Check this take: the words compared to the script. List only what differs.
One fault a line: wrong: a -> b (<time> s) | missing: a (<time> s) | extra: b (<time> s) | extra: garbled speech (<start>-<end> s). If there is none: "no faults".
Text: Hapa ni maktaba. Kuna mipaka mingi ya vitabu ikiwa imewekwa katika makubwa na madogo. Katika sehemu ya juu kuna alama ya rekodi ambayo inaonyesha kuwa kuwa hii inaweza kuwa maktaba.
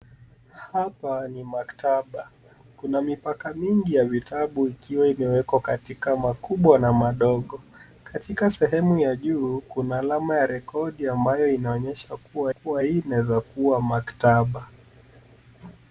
no faults